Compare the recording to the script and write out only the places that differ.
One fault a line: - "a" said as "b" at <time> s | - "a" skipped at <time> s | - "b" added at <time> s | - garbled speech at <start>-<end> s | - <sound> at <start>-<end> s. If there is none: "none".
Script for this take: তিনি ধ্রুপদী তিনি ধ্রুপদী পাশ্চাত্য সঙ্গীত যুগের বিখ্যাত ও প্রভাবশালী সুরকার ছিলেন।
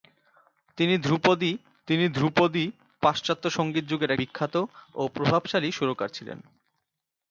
none